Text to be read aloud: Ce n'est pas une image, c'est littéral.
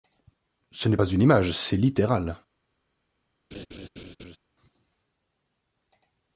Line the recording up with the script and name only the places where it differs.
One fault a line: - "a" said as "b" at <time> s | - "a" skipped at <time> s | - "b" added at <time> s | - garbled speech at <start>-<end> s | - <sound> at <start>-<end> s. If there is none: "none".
- laugh at 3.5-4.4 s